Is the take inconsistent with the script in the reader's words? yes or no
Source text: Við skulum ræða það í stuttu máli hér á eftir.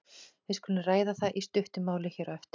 no